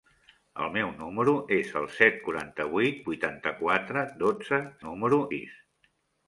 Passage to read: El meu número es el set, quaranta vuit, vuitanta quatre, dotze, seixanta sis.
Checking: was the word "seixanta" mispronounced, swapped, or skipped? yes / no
yes